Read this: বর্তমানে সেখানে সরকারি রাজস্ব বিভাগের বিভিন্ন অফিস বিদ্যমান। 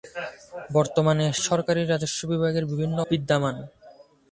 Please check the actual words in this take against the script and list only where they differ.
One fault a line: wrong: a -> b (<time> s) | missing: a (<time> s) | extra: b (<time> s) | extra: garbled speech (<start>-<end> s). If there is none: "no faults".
missing: সেখানে (1.2 s)
missing: অফিস (3.0 s)